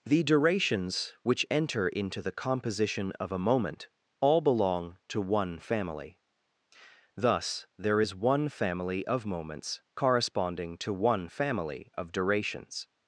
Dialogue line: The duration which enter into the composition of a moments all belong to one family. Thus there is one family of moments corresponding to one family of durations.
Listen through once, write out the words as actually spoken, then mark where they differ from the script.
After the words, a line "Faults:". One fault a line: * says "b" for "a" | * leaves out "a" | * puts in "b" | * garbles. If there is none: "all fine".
The durations which enter into the composition of a moment all belong to one family. Thus there is one family of moments corresponding to one family of durations.
Faults:
* says "durations" for "duration"
* says "moment" for "moments"